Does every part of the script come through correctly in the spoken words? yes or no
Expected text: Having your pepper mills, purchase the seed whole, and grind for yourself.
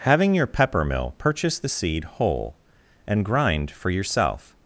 no